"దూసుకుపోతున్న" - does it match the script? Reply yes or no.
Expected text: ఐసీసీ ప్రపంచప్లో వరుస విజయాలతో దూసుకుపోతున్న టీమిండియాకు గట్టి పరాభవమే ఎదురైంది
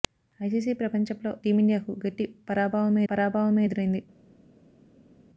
no